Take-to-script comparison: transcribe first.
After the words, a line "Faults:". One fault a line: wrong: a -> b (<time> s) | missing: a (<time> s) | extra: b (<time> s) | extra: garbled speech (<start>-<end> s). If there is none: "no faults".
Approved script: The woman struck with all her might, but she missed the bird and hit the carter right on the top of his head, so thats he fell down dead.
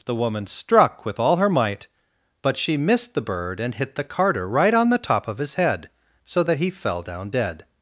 The woman struck with all her might, but she missed the bird and hit the carter right on the top of his head, so that he fell down dead.
Faults:
wrong: thats -> that (6.4 s)